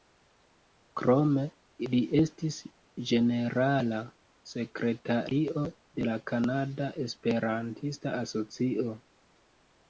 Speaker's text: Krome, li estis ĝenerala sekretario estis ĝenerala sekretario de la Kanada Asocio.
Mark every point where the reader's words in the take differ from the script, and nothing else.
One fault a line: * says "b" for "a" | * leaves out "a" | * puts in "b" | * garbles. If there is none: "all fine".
* leaves out "estis ĝenerala sekretario"
* puts in "Esperantista"